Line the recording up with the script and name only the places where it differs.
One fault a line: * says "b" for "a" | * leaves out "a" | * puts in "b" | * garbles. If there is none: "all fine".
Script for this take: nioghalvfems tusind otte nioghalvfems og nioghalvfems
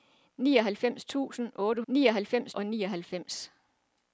all fine